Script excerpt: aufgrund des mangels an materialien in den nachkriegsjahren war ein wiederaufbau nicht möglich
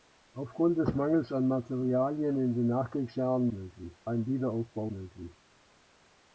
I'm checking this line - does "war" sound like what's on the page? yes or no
no